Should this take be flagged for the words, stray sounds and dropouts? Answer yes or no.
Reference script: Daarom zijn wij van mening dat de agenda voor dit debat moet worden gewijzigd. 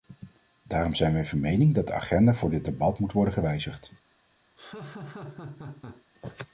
yes